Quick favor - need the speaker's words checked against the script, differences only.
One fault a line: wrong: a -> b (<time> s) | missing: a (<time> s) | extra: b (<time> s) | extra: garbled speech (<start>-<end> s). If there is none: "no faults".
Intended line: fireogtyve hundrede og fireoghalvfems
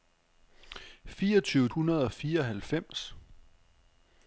no faults